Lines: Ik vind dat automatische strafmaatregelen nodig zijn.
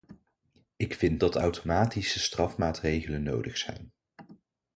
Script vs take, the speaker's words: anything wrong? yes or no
no